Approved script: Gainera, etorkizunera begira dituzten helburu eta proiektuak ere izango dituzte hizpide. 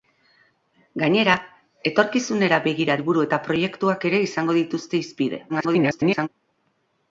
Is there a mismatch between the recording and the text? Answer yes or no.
yes